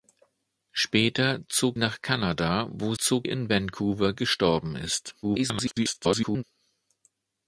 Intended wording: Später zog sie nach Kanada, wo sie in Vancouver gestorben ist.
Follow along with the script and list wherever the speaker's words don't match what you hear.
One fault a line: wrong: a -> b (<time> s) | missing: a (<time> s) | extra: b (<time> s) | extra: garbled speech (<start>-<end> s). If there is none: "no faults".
missing: sie (1.8 s)
wrong: sie -> zog (3.0 s)
extra: garbled speech (5.2-6.4 s)